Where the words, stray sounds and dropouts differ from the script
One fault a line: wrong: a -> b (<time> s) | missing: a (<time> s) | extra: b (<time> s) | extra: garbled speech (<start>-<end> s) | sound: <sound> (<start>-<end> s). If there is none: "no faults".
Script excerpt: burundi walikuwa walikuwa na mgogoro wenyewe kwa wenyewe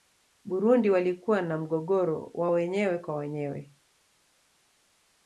missing: walikuwa (1.4 s)
extra: wa (2.3 s)